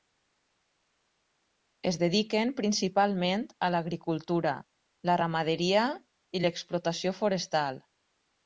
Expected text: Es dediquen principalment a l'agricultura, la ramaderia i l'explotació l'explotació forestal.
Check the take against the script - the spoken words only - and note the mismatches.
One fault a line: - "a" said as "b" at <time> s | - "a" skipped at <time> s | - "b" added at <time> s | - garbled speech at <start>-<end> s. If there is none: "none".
- "l'explotació" skipped at 7.2 s